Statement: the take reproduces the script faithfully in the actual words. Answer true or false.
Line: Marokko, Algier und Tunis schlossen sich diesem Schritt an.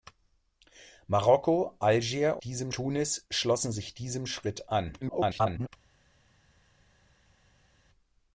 false